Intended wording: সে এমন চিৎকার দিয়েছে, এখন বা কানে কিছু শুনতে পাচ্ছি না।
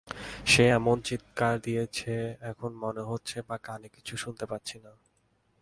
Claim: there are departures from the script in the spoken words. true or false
true